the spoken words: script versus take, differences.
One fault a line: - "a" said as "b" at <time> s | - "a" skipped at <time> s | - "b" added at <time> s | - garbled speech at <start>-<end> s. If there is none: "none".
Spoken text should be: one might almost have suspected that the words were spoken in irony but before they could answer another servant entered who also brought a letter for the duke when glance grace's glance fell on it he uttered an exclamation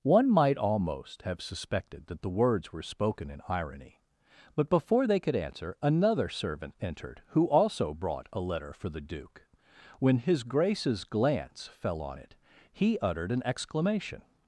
- "glance" said as "his" at 10.2 s